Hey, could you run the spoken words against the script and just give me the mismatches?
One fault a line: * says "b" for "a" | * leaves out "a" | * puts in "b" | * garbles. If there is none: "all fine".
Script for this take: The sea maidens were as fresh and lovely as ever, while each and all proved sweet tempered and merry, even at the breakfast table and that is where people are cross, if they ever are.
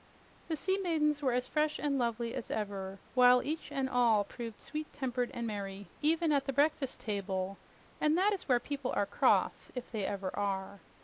all fine